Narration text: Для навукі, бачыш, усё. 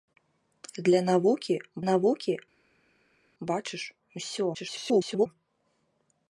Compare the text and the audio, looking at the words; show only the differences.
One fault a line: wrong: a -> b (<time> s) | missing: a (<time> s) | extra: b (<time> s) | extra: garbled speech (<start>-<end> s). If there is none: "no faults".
extra: навукі (1.9 s)
extra: garbled speech (4.5-5.3 s)